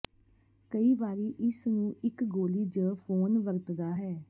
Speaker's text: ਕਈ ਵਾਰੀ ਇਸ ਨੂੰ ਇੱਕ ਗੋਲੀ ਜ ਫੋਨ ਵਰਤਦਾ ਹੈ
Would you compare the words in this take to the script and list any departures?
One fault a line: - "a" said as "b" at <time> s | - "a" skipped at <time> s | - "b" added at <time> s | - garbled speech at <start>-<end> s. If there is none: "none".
none